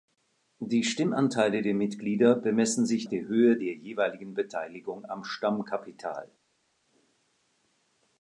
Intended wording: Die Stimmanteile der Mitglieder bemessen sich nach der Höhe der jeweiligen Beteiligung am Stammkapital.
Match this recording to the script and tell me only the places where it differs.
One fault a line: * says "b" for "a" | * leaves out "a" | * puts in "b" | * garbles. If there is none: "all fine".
* leaves out "nach"